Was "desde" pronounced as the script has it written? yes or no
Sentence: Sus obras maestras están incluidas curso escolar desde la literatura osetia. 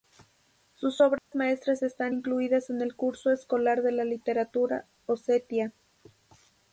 no